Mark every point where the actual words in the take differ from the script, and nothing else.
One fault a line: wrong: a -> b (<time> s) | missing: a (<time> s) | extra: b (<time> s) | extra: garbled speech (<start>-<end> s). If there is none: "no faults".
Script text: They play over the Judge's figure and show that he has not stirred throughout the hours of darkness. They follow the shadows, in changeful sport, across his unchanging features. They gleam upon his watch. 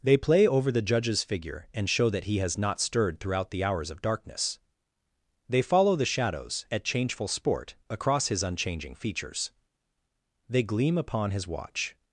wrong: in -> at (6.7 s)